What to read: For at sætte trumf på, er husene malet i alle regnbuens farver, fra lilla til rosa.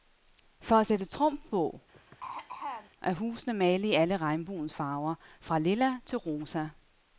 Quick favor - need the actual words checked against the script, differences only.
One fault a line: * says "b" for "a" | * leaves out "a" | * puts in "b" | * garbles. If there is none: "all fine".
all fine